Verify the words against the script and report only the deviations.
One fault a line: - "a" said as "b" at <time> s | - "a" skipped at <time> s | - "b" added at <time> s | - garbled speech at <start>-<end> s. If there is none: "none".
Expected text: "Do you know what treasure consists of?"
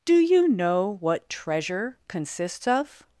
none